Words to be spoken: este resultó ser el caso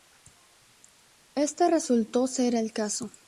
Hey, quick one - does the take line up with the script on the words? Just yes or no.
yes